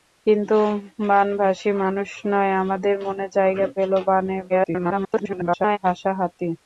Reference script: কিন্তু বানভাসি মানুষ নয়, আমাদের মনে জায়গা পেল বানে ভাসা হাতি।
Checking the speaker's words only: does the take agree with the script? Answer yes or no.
no